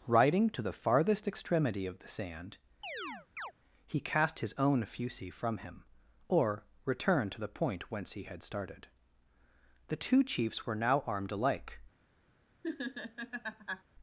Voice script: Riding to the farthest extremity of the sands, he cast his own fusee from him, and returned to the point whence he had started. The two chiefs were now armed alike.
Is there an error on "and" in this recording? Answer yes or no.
yes